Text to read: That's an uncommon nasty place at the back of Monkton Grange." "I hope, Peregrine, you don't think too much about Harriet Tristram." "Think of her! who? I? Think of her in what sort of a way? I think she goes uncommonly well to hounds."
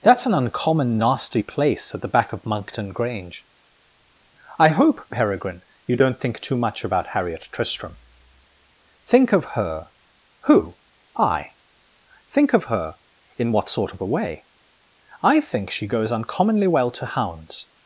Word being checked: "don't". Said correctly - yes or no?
yes